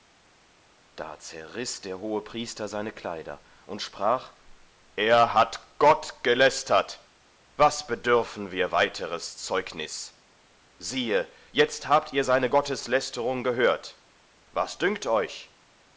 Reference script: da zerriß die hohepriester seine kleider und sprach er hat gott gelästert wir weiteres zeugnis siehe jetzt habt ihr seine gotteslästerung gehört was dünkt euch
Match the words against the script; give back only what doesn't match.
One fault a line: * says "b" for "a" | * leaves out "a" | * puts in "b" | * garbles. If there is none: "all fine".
* says "der" for "die"
* puts in "was bedürfen"